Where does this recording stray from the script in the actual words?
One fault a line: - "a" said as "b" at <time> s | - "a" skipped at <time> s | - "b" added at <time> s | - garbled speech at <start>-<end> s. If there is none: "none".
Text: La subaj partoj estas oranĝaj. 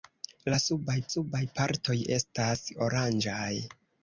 - "subaj" added at 1.1 s